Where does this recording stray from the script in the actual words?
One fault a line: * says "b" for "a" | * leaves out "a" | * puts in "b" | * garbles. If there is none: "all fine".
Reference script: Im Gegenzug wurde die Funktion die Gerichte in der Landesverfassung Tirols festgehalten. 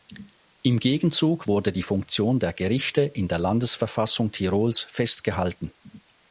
* says "der" for "die"